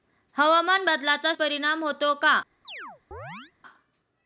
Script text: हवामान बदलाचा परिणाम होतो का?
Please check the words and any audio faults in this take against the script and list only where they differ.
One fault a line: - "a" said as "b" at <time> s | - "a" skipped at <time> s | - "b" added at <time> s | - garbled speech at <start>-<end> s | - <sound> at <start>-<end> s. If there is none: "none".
- chirp at 2.6-3.5 s